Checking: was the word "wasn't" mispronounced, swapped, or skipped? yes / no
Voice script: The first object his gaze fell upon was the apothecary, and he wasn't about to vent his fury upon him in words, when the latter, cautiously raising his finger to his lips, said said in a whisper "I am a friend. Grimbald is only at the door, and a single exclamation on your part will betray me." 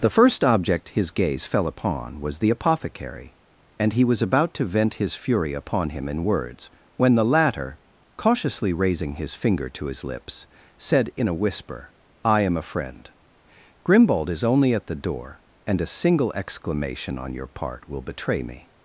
yes